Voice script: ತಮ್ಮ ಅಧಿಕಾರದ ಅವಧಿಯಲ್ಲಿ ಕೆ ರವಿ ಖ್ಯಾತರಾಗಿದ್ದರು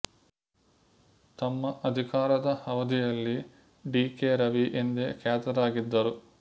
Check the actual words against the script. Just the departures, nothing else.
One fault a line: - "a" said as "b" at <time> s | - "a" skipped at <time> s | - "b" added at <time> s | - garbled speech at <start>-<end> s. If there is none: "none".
- "ಡಿ" added at 3.9 s
- "ಎಂದೇ" added at 4.8 s